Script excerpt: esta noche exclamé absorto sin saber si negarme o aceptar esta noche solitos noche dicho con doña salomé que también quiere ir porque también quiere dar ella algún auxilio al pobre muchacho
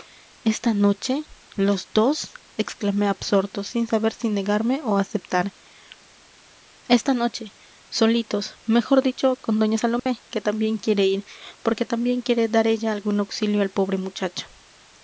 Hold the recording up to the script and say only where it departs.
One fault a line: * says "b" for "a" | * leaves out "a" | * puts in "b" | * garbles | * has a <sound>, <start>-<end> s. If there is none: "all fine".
* puts in "los dos"
* says "mejor" for "noche"
* has a dropout, 10.0-10.1 s